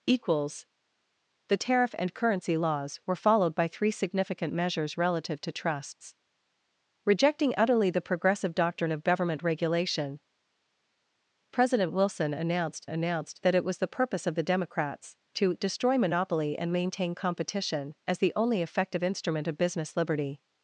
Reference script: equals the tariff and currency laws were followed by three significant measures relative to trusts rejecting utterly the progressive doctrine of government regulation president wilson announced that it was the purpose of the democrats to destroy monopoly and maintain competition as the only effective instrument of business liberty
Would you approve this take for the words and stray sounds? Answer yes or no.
no